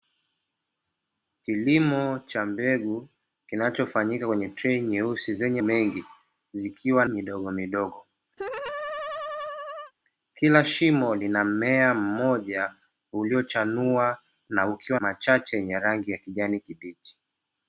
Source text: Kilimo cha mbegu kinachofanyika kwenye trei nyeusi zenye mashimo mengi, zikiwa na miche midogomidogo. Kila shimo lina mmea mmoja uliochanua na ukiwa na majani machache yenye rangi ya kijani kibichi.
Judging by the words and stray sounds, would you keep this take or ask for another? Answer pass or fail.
fail